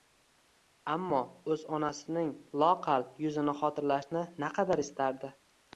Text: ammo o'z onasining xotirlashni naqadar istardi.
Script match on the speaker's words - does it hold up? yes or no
no